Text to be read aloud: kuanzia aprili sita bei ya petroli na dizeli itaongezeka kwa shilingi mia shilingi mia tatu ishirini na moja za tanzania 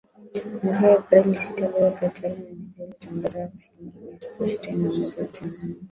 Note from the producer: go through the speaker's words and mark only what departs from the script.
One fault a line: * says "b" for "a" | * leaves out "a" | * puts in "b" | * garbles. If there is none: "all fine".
* leaves out "shilingi mia"